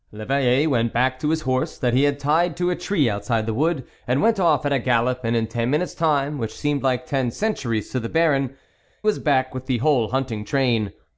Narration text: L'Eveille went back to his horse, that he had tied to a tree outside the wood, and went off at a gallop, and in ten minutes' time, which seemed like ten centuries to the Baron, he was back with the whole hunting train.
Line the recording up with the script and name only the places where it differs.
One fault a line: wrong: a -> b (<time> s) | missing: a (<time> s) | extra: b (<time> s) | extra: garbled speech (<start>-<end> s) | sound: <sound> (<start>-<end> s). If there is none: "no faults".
missing: he (8.6 s)